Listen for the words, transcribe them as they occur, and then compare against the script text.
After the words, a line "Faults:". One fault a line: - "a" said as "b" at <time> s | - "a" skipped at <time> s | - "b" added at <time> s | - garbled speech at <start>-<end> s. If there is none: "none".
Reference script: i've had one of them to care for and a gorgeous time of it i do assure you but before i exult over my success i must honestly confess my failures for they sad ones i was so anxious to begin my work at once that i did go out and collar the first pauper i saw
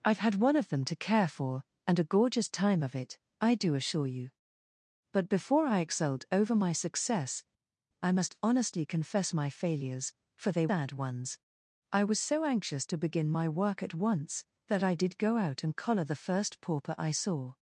i've had one of them to care for and a gorgeous time of it i do assure you but before i exult over my success i must honestly confess my failures for they sad ones i was so anxious to begin my work at once that i did go out and collar the first pauper i saw
Faults:
none